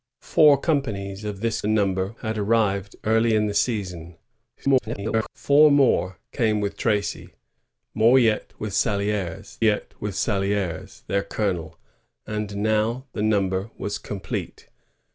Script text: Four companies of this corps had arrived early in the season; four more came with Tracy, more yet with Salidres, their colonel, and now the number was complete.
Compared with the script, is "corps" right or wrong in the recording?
wrong